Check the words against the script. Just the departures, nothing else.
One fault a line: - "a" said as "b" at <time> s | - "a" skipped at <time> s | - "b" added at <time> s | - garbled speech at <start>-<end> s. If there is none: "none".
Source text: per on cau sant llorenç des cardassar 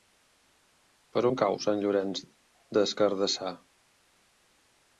none